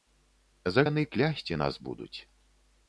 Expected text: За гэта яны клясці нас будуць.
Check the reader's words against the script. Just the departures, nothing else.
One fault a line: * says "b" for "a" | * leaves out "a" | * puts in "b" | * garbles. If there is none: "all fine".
* leaves out "гэта"